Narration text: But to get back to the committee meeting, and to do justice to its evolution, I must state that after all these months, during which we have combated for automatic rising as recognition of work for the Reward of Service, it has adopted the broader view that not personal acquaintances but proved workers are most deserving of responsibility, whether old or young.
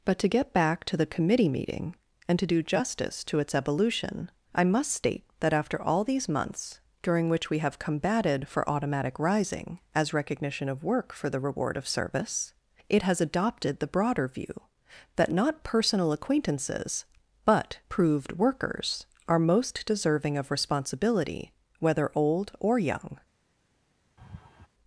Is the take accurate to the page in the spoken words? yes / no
yes